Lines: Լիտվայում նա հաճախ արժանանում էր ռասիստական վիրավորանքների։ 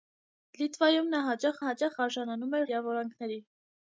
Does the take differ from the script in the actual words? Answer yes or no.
yes